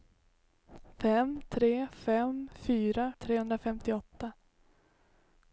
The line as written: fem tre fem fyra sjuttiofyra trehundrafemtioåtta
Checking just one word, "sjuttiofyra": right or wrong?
wrong